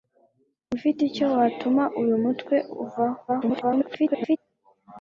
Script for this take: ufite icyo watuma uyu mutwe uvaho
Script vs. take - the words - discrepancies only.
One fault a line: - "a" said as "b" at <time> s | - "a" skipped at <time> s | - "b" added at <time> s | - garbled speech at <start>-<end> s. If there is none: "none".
- garbled speech at 3.3-4.4 s